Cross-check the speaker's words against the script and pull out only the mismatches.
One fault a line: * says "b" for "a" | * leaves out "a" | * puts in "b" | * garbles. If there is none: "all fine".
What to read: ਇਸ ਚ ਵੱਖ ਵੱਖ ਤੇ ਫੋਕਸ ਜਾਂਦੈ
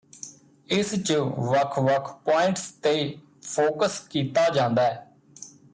* puts in "ਪੁਆਇੰਟਸ"
* puts in "ਕੀਤਾ"